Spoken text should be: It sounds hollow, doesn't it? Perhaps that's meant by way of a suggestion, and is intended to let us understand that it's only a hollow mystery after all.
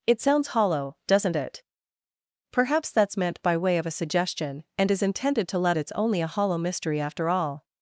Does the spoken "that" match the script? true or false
false